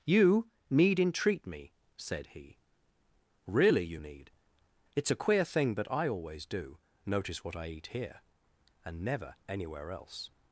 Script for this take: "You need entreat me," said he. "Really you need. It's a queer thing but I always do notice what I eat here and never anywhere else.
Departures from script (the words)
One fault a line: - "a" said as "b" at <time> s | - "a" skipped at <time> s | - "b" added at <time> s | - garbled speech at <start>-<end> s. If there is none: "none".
none